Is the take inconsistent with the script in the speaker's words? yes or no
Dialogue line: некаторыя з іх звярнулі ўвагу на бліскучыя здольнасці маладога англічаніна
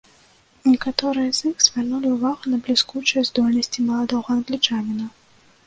no